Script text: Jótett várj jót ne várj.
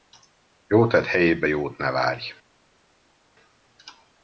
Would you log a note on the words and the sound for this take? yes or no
yes